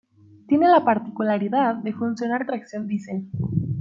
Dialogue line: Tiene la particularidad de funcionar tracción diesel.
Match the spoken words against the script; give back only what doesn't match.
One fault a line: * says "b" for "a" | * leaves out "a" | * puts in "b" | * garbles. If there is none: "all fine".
all fine